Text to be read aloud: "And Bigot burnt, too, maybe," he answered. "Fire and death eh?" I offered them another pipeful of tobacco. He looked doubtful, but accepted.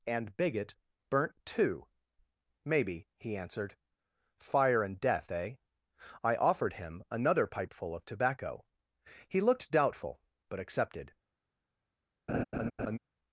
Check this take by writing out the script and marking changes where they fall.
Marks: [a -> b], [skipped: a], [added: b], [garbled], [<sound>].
"And Bigot burnt, too, maybe," he answered. "Fire and death eh?" I offered [them -> him] another pipeful of tobacco. He looked doubtful, but accepted. [laugh]